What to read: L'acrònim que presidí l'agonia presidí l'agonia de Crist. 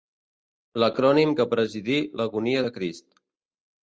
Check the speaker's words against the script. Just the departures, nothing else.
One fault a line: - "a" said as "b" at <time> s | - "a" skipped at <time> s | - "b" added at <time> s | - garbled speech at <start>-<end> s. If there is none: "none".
- "presidí l'agonia" skipped at 2.6 s